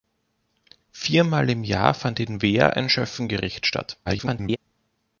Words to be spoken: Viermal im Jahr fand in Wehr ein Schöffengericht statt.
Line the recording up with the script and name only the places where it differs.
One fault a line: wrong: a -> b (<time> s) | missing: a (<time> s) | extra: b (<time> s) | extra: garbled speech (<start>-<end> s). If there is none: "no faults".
extra: garbled speech (4.1-4.6 s)